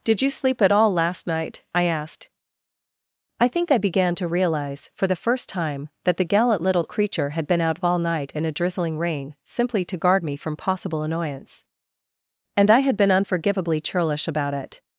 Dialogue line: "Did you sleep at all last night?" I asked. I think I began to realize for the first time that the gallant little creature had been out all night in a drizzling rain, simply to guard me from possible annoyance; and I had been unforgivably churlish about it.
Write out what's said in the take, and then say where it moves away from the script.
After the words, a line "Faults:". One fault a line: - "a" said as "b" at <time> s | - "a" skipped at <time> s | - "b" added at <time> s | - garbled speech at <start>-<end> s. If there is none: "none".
"Did you sleep at all last night?" I asked. I think I began to realize for the first time that the gallant little creature had been out all night in a drizzling rain, simply to guard me from possible annoyance; and I had been unforgivably churlish about it.
Faults:
none